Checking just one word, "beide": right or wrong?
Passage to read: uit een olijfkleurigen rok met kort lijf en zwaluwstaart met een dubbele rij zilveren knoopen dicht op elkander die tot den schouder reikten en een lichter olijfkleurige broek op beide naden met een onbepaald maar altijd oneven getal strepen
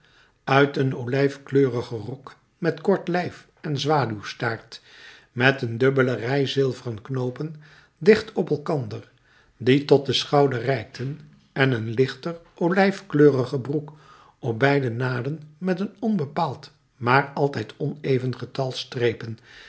right